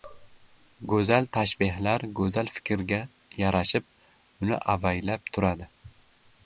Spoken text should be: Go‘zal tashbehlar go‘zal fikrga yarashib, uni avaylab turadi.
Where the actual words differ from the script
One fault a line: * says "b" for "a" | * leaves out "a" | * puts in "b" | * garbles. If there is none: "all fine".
all fine